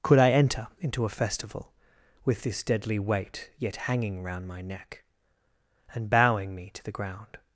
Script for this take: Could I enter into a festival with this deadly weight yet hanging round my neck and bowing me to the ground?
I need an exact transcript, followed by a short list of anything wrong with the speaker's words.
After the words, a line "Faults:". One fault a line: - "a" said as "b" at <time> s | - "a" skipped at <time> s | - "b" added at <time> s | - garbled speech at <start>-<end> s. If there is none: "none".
Could I enter into a festival with this deadly weight yet hanging round my neck and bowing me to the ground?
Faults:
none